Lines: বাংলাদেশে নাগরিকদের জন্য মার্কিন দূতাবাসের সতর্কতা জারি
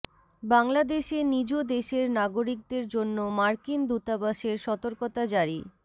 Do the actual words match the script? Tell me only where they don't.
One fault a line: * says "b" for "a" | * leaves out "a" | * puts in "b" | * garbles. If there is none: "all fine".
* puts in "নিজ দেশের"